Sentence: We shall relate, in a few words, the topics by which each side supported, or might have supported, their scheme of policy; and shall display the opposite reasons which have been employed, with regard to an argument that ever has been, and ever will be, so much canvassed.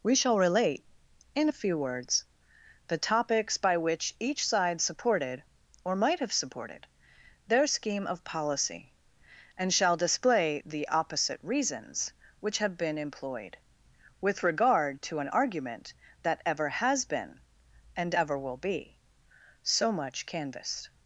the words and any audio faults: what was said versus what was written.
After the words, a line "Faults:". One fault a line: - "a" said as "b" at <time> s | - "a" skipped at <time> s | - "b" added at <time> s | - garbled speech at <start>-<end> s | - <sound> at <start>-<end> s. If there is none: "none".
We shall relate, in a few words, the topics by which each side supported, or might have supported, their scheme of policy; and shall display the opposite reasons which have been employed, with regard to an argument that ever has been, and ever will be, so much canvassed.
Faults:
none